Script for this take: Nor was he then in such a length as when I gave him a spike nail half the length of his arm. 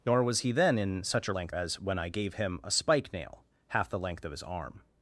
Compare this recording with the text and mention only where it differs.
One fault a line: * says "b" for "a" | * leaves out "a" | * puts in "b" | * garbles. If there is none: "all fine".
all fine